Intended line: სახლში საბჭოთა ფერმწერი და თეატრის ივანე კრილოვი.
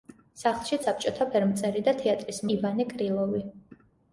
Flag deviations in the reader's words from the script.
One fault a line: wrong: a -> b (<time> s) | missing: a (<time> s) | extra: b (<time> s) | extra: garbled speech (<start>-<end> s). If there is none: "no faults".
no faults